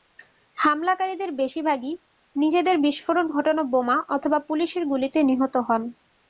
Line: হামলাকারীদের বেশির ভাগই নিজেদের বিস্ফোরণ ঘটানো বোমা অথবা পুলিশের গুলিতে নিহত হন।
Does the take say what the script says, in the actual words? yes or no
yes